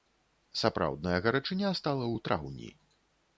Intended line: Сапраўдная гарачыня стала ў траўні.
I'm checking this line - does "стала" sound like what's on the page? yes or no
yes